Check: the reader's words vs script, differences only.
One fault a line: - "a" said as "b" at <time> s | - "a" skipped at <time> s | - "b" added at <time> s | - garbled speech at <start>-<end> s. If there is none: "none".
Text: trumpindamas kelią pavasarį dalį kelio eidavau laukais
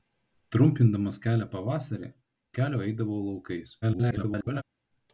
- "dalį" skipped at 2.1 s
- garbled speech at 3.8-4.6 s